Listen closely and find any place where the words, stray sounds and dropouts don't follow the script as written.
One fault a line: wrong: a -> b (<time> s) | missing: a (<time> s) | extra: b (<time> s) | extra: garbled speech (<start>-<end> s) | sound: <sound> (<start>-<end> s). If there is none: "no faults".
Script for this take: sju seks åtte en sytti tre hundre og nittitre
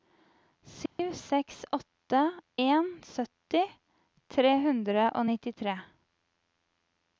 sound: dropout (0.9-1.0 s)